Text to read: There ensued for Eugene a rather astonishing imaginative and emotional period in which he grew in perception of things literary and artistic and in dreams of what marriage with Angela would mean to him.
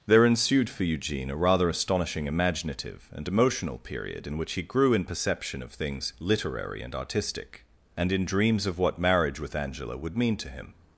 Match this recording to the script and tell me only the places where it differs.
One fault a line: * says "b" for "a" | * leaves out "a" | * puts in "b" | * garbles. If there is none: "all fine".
all fine